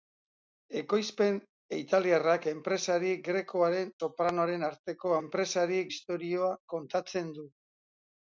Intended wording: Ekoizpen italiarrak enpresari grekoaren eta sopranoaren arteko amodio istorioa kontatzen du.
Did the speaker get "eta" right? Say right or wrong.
wrong